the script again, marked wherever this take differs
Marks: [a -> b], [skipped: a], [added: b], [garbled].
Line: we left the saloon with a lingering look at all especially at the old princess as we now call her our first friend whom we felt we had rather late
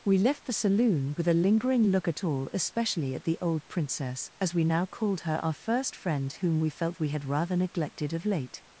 we left the saloon with a lingering look at all especially at the old princess as we now [call -> called] her our first friend whom we felt we had rather [added: neglected of] late